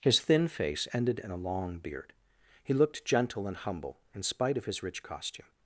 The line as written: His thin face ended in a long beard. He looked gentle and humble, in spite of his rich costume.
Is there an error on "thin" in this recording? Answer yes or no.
no